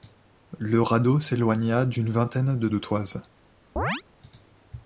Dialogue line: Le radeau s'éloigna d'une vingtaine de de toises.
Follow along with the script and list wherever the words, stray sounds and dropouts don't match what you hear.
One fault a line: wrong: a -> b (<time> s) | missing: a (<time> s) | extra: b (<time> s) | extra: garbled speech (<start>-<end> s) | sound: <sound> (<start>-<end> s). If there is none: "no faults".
sound: chirp (3.8-4.0 s)